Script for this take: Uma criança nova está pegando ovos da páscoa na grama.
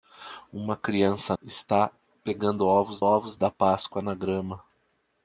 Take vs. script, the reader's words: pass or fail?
fail